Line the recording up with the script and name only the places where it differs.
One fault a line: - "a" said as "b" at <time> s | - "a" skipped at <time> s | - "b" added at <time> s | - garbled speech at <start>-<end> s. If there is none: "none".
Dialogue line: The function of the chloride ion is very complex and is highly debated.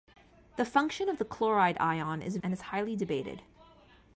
- "very complex" skipped at 2.4 s